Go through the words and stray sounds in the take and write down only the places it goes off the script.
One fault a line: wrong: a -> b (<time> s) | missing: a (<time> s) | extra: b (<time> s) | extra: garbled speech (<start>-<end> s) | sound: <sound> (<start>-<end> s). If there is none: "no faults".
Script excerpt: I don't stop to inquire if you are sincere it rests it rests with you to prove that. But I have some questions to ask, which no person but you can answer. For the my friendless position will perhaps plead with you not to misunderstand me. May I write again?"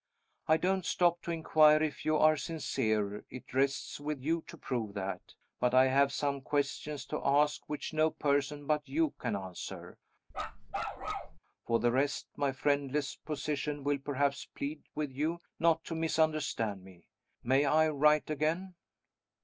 missing: it rests (4.0 s)
sound: bark (10.3-11.4 s)
extra: rest (11.9 s)